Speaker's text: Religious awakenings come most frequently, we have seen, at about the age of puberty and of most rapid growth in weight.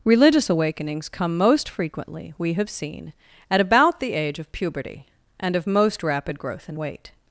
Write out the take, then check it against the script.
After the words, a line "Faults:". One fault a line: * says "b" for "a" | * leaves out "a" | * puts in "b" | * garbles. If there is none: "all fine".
Religious awakenings come most frequently, we have seen, at about the age of puberty and of most rapid growth in weight.
Faults:
all fine